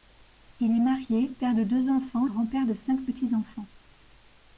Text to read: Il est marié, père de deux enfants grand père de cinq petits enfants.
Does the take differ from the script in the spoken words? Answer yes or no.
no